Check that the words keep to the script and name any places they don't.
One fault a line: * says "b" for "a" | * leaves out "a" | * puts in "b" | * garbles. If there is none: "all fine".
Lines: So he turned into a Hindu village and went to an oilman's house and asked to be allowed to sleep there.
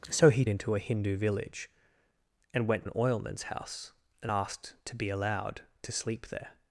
* leaves out "turned"
* leaves out "to"